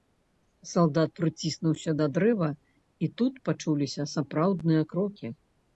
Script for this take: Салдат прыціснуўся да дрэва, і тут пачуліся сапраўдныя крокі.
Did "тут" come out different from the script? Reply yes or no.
no